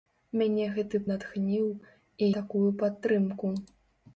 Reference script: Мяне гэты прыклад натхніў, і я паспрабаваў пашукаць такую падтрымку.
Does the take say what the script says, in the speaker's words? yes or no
no